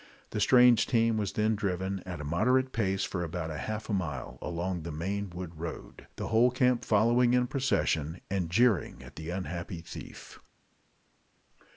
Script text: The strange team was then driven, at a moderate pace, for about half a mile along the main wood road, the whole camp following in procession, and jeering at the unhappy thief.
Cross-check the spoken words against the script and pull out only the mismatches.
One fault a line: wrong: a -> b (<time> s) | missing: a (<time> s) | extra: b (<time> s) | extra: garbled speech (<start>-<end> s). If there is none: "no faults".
no faults